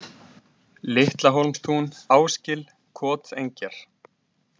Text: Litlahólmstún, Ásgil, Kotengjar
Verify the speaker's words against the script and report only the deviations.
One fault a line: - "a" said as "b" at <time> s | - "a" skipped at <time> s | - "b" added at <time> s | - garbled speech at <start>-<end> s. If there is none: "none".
none